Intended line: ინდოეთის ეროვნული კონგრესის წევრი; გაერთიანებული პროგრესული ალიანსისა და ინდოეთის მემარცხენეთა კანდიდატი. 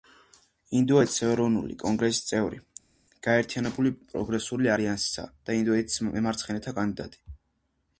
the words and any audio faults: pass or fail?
pass